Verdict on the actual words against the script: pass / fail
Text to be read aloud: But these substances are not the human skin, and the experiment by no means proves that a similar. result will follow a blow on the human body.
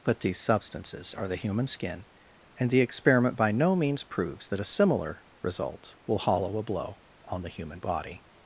fail